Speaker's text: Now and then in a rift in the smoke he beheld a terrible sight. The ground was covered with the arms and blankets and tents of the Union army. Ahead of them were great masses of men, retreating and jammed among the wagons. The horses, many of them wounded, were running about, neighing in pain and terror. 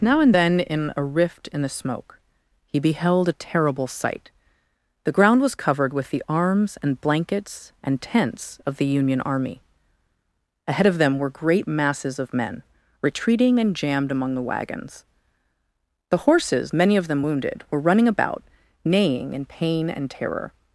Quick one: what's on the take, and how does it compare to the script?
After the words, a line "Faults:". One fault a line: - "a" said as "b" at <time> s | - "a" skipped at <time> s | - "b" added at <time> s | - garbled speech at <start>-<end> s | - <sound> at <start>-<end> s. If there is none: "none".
Now and then in a rift in the smoke he beheld a terrible sight. The ground was covered with the arms and blankets and tents of the Union army. Ahead of them were great masses of men, retreating and jammed among the wagons. The horses, many of them wounded, were running about, neighing in pain and terror.
Faults:
none